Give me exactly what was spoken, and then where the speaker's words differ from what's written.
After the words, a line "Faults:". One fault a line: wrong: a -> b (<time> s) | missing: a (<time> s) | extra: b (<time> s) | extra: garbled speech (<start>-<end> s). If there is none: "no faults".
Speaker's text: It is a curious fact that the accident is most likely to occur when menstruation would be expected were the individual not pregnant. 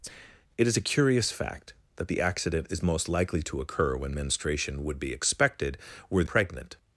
It is a curious fact that the accident is most likely to occur when menstruation would be expected were pregnant.
Faults:
missing: the individual not (6.2 s)